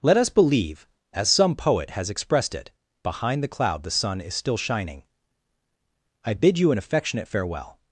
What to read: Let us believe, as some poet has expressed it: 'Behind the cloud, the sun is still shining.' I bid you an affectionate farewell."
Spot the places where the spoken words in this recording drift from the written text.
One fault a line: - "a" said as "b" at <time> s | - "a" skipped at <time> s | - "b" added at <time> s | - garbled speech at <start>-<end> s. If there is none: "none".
none